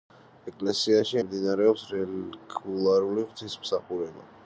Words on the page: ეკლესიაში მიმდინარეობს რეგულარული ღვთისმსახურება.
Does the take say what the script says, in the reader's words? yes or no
yes